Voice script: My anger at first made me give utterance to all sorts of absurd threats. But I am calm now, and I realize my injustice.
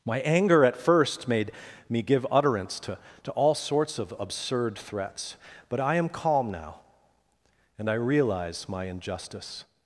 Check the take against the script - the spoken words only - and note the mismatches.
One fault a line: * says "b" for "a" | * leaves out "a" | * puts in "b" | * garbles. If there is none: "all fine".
* puts in "to"